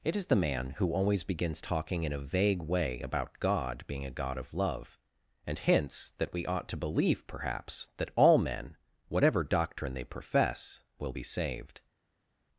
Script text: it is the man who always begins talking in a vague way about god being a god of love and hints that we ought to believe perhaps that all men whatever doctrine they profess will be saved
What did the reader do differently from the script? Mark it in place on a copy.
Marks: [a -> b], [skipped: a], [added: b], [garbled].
it is the man who always begins talking in a vague way about god being a god of love and hints that we ought to believe perhaps that all men whatever doctrine they profess will be saved